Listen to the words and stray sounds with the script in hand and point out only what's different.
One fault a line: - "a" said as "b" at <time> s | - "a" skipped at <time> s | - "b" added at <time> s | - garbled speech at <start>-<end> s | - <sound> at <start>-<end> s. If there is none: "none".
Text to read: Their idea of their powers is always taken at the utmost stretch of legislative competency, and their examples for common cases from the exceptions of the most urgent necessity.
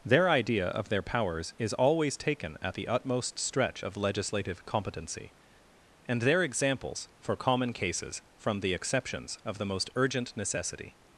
none